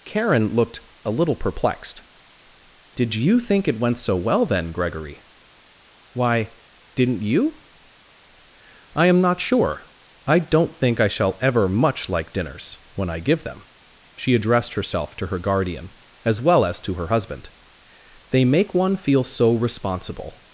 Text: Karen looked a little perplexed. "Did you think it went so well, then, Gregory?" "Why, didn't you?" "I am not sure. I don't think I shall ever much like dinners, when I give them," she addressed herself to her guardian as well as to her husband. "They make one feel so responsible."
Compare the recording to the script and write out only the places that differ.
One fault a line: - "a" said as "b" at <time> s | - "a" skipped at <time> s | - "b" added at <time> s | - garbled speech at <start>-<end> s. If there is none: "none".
none